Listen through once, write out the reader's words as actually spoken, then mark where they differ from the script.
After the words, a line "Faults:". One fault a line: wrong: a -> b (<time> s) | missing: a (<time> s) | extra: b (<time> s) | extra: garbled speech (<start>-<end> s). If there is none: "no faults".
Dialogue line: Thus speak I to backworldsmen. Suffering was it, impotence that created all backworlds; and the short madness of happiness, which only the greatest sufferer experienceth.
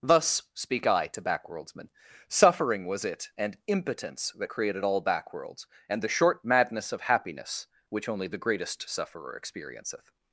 Thus speak I to backworldsmen. Suffering was it, and impotence that created all backworlds; and the short madness of happiness, which only the greatest sufferer experienceth.
Faults:
extra: and (3.4 s)